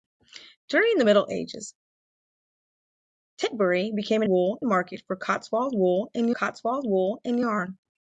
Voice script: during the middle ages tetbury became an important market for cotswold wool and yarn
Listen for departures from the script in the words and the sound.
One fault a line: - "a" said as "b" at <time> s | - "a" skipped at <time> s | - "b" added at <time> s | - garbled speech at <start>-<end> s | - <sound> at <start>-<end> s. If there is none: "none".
- "important" said as "wool" at 4.3 s
- "cotswold wool and" added at 6.3 s